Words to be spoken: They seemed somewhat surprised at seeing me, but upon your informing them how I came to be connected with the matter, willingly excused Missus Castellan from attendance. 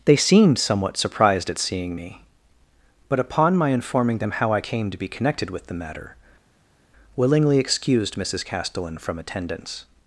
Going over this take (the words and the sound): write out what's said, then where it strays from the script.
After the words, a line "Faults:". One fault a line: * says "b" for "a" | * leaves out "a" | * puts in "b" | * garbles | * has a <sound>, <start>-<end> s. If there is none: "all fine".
They seemed somewhat surprised at seeing me, but upon my informing them how I came to be connected with the matter, willingly excused Missus Castellan from attendance.
Faults:
* says "my" for "your"